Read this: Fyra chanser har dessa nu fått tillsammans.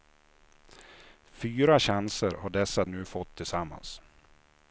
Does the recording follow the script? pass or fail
pass